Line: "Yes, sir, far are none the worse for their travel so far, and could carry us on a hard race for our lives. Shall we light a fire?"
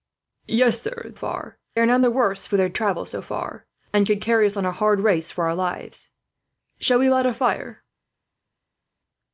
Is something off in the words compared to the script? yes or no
no